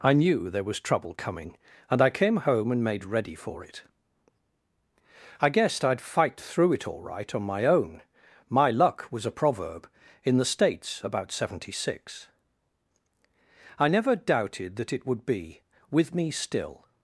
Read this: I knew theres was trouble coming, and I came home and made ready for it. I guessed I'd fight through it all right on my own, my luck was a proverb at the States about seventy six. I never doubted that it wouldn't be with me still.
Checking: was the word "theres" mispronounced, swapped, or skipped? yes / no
yes